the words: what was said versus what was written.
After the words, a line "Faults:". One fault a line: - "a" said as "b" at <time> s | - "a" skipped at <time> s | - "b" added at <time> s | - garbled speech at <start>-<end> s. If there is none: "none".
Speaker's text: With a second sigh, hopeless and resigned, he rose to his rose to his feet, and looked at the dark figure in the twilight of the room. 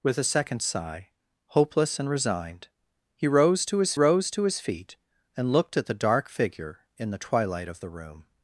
With a second sigh, hopeless and resigned, he rose to his rose to his feet, and looked at the dark figure in the twilight of the room.
Faults:
none